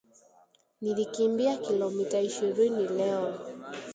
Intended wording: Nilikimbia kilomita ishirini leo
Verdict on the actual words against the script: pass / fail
pass